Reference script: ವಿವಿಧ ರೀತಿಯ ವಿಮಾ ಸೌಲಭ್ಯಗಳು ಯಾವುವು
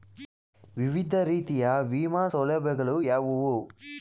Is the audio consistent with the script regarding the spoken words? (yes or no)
yes